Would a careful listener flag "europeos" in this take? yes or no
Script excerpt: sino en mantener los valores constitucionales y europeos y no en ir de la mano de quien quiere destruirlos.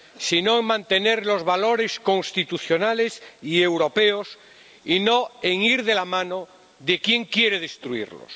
no